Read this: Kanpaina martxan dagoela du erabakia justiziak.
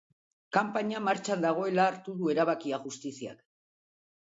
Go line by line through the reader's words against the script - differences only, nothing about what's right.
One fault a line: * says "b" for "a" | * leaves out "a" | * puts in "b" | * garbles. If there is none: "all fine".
* puts in "hartu"